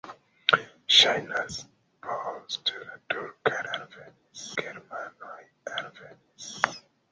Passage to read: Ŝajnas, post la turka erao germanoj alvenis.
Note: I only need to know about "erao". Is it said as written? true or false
false